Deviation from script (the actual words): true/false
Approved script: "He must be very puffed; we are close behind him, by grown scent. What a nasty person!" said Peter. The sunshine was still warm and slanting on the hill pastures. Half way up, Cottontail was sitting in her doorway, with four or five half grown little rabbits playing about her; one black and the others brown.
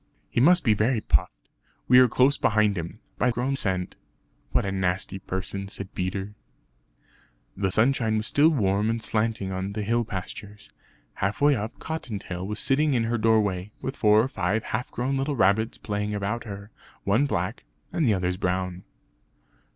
false